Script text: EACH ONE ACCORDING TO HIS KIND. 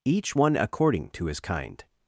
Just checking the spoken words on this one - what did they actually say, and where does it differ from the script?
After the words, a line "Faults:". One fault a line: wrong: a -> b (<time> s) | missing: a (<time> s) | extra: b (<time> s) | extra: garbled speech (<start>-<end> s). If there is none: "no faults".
EACH ONE ACCORDING TO HIS KIND.
Faults:
no faults